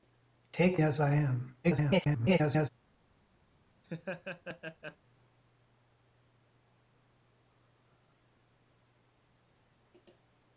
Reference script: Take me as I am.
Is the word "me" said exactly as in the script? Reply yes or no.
no